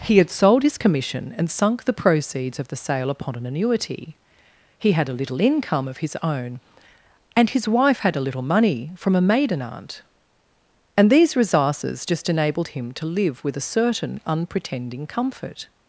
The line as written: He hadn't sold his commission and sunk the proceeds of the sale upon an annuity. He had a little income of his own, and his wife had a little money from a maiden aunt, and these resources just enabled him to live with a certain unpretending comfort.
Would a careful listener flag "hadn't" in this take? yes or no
yes